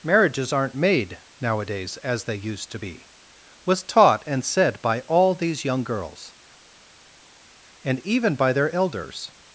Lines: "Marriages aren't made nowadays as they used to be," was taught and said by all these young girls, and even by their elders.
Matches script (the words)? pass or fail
pass